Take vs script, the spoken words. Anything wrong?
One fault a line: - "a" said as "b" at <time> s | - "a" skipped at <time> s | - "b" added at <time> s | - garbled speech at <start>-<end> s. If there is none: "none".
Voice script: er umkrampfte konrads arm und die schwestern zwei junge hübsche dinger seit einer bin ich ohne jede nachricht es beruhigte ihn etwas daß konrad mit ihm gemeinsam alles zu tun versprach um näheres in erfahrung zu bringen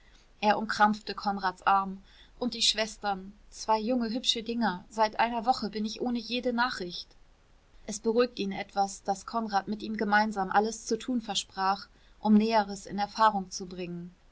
- "woche" added at 5.4 s